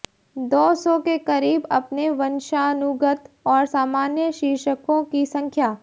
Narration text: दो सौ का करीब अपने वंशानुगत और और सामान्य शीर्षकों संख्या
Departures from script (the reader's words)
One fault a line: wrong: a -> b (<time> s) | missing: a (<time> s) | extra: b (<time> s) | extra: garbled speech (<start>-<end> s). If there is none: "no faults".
wrong: का -> के (1.0 s)
missing: और (3.6 s)
extra: की (5.0 s)